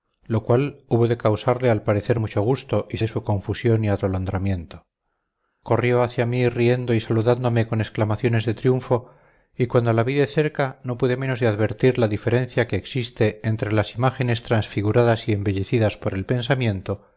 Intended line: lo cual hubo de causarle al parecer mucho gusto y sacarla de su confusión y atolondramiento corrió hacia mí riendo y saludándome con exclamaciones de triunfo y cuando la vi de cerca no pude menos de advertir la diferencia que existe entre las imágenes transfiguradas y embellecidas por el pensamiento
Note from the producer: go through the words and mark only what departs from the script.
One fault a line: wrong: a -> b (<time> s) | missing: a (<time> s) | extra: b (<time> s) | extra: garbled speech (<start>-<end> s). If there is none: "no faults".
missing: sacarla (3.0 s)